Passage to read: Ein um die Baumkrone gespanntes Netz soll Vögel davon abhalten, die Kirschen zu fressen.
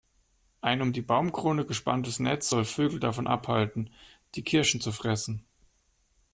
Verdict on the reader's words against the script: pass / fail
pass